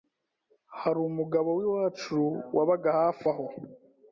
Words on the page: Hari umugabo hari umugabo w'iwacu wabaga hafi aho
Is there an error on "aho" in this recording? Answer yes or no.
no